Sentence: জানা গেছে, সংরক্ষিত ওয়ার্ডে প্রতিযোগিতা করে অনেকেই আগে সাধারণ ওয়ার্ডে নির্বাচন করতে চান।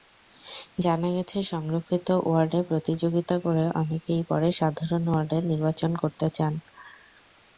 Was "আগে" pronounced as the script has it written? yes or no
no